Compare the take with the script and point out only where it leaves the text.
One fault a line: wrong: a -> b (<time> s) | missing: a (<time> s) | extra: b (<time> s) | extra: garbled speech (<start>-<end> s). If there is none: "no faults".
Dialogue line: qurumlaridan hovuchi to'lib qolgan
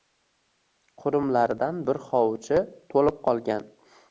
extra: bir (1.9 s)